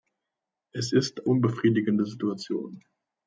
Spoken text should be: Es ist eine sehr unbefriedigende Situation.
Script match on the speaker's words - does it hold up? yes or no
no